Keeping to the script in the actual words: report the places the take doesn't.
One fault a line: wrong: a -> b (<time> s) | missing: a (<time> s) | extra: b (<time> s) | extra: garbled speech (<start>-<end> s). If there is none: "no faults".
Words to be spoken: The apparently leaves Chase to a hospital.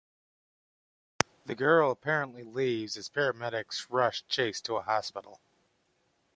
extra: girl (1.5 s)
extra: as paramedics rush (3.0 s)